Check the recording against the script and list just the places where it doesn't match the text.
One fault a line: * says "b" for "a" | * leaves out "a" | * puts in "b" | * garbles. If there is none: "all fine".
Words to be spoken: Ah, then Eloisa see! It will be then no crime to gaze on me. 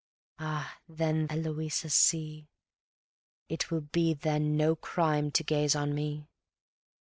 all fine